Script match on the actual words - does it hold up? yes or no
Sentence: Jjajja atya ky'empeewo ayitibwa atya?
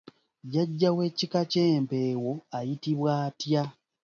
no